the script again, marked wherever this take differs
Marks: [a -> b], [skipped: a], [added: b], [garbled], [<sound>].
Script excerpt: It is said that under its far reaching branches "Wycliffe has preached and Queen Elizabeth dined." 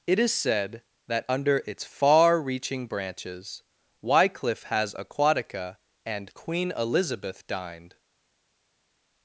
It is said that under its far reaching branches "Wycliffe has [preached -> aquatica] and Queen Elizabeth dined."